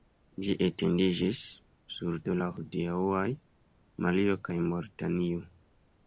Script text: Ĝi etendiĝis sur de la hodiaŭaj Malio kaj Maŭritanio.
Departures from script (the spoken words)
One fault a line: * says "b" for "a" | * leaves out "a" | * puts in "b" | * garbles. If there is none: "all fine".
all fine